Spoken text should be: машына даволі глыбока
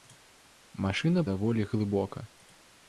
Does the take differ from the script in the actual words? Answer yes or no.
no